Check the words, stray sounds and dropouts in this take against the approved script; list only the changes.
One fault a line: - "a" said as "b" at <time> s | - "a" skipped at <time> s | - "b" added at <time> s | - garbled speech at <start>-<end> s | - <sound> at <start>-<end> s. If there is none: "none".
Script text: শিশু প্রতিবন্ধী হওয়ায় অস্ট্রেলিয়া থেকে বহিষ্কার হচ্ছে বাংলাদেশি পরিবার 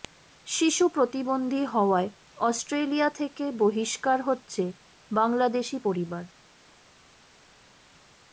none